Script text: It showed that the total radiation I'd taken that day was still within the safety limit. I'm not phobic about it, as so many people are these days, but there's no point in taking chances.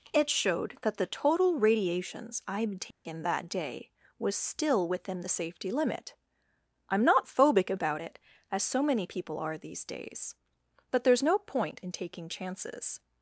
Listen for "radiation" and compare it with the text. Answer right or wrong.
wrong